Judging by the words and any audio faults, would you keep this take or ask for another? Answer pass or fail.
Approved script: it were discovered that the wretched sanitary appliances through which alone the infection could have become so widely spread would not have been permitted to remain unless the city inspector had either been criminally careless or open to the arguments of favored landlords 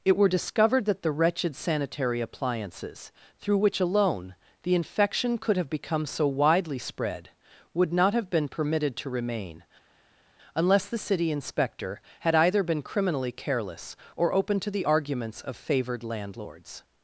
pass